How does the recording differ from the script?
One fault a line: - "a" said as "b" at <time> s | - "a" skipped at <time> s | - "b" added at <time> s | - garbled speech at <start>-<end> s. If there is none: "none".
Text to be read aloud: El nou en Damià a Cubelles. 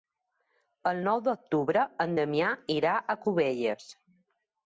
- "d'octubre" added at 1.3 s
- "irà" added at 2.8 s